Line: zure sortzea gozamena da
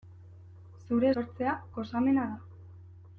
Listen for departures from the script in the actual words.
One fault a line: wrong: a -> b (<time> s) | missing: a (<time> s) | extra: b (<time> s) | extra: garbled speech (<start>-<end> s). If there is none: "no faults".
no faults